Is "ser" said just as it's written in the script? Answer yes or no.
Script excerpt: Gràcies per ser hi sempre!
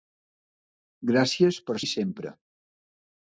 no